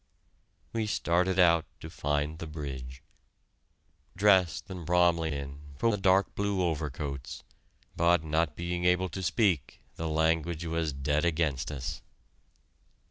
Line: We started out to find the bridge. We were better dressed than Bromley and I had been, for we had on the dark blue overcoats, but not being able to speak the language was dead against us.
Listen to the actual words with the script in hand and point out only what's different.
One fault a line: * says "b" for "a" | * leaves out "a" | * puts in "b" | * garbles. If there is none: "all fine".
* leaves out "We were better"
* leaves out "and I had"
* leaves out "we had on"